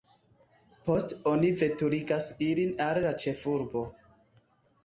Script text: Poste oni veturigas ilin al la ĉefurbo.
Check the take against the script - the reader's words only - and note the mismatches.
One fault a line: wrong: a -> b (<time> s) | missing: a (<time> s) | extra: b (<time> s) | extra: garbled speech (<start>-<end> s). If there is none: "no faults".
no faults